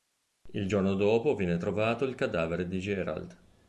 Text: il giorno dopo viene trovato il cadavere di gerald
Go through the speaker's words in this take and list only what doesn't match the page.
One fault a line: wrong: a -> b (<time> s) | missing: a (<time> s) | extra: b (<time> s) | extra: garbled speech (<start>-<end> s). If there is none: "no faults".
no faults